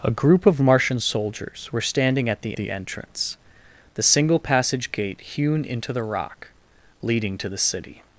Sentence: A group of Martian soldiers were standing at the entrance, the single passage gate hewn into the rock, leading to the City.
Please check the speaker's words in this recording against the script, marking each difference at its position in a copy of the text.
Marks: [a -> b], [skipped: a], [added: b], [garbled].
A group of Martian soldiers were standing at the [added: the] entrance, the single passage gate hewn into the rock, leading to the City.